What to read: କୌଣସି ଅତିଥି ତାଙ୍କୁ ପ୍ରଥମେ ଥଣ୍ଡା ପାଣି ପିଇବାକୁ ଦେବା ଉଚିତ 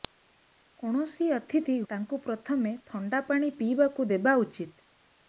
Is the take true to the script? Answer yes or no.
yes